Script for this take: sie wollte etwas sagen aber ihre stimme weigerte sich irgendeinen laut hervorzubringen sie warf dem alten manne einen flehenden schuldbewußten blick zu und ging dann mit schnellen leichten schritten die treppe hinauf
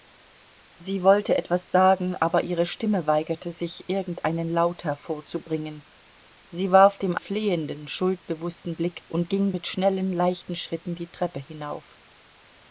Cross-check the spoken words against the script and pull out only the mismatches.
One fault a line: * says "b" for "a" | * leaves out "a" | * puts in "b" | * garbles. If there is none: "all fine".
* leaves out "alten manne einen"
* leaves out "zu"
* leaves out "dann"